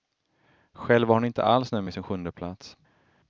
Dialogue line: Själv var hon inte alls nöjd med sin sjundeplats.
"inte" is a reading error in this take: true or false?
false